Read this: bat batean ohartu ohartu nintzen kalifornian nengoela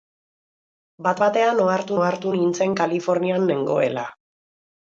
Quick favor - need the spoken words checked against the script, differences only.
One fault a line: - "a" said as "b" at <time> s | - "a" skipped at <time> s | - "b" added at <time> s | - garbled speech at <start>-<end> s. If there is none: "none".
none